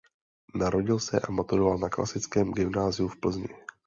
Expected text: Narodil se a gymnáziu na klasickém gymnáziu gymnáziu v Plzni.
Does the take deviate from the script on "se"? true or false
false